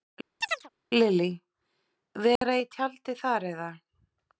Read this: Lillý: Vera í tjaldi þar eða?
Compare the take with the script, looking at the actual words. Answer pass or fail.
pass